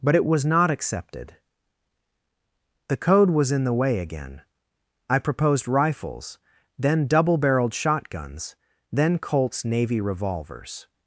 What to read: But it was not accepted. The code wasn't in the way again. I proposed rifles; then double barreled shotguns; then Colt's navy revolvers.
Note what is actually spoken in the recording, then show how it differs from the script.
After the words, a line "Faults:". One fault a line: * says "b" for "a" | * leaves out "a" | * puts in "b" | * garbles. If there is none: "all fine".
But it was not accepted. The code was in the way again. I proposed rifles; then double barreled shotguns; then Colt's navy revolvers.
Faults:
* says "was" for "wasn't"